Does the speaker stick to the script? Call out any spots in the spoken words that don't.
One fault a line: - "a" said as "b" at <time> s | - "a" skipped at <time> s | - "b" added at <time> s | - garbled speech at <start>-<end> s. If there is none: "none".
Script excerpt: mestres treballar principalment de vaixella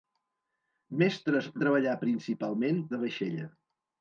none